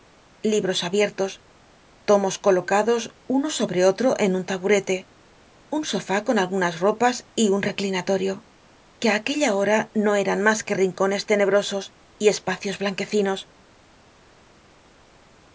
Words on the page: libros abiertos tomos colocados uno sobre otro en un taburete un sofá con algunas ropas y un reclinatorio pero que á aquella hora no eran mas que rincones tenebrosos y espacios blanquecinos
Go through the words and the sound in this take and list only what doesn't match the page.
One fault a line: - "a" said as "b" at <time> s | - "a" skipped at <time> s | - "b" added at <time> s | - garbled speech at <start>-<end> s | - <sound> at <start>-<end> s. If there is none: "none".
- "pero" skipped at 8.3 s